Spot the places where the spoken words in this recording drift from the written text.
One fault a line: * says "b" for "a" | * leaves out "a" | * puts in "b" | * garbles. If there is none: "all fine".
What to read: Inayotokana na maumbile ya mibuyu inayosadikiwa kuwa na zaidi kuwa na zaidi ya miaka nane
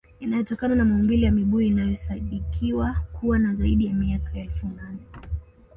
* leaves out "kuwa na zaidi"
* puts in "elfu"